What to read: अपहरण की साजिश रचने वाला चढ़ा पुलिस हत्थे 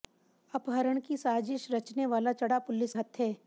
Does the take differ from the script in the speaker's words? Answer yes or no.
no